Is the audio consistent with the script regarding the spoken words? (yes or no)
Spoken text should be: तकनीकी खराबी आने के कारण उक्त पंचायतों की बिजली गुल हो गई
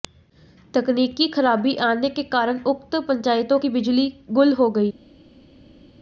yes